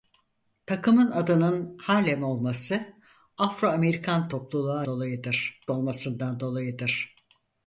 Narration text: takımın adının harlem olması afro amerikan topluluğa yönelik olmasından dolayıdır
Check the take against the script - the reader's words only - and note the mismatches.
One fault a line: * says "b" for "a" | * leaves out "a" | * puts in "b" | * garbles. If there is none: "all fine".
* says "dolayıdır" for "yönelik"